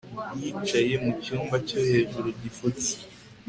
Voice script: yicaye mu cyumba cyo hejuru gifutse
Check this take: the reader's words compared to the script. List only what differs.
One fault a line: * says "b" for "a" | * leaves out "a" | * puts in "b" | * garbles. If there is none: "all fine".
all fine